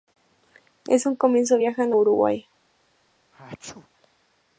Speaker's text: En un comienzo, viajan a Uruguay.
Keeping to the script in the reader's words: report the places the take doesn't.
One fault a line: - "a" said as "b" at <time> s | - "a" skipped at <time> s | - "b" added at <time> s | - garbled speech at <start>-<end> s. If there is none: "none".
- "a" skipped at 1.9 s